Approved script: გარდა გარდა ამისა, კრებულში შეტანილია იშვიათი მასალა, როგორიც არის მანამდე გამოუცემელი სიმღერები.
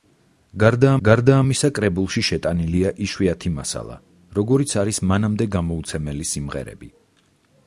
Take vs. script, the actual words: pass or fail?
pass